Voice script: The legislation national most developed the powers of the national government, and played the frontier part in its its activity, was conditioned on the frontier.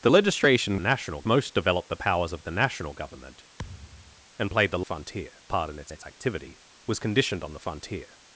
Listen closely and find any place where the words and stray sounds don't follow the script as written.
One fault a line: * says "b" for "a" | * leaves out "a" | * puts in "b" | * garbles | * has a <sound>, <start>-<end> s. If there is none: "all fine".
* has a thud, 3.6-4.3 s